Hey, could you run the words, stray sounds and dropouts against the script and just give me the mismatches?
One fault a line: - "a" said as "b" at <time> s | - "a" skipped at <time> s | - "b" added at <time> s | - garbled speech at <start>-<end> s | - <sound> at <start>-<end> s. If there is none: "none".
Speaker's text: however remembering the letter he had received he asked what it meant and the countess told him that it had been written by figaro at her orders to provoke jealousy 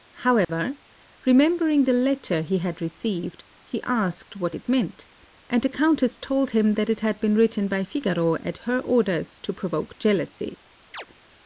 - dropout at 0.4-0.5 s
- chirp at 10.9-11.1 s